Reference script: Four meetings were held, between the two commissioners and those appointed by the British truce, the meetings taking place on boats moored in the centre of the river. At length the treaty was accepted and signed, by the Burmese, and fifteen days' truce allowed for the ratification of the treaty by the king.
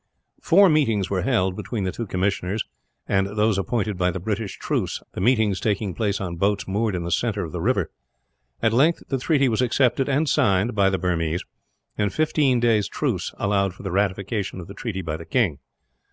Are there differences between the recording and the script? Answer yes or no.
no